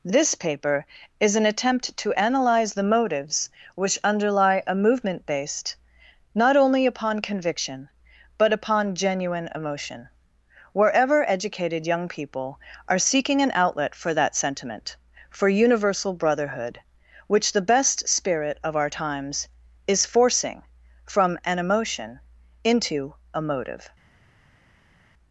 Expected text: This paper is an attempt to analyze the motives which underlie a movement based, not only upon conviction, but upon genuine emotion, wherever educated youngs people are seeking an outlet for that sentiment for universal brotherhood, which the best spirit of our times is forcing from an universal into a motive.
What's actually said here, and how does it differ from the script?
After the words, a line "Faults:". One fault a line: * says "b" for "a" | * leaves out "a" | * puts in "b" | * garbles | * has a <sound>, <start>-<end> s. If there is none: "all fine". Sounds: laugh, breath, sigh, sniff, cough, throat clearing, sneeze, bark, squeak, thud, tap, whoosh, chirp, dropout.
This paper is an attempt to analyze the motives which underlie a movement based, not only upon conviction, but upon genuine emotion, wherever educated young people are seeking an outlet for that sentiment for universal brotherhood, which the best spirit of our times is forcing from an emotion into a motive.
Faults:
* says "young" for "youngs"
* says "emotion" for "universal"